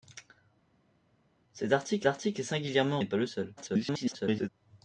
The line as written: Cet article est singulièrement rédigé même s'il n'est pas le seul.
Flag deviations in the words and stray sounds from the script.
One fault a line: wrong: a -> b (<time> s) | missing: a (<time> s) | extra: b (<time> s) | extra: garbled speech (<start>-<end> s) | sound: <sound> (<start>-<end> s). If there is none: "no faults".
extra: article (2.1 s)
missing: rédigé même s'il (3.0 s)
extra: garbled speech (3.6-4.5 s)